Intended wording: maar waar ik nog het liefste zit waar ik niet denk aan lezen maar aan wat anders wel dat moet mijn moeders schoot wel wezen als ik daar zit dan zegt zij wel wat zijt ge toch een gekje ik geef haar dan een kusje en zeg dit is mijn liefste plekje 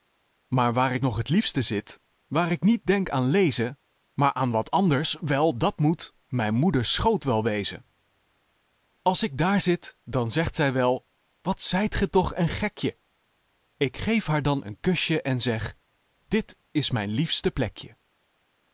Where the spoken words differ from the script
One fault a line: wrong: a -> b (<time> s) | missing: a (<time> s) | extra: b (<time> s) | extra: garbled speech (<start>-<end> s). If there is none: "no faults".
no faults